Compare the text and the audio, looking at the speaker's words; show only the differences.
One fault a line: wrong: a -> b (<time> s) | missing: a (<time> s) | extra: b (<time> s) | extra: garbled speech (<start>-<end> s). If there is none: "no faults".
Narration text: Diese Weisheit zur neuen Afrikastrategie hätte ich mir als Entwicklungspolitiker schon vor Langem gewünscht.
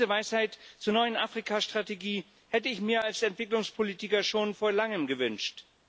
no faults